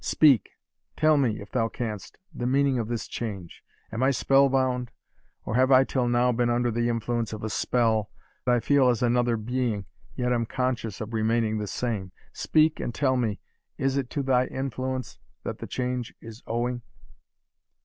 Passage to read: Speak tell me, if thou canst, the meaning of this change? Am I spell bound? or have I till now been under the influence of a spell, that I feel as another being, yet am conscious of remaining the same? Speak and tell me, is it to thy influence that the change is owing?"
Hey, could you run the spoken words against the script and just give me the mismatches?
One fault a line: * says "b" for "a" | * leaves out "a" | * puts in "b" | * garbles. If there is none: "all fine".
* leaves out "that"